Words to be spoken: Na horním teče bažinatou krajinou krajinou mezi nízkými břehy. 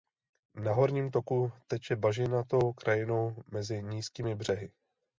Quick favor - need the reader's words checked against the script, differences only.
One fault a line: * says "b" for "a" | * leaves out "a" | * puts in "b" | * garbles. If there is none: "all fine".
* puts in "toku"
* leaves out "krajinou"